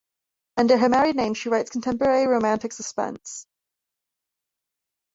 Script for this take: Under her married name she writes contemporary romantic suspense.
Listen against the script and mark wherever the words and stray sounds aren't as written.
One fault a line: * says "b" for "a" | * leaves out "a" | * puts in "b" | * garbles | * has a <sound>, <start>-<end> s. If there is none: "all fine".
all fine